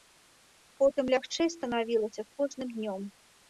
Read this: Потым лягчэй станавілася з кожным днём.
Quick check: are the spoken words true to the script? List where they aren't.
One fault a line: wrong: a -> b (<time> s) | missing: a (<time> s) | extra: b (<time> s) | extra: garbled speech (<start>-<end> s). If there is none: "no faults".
no faults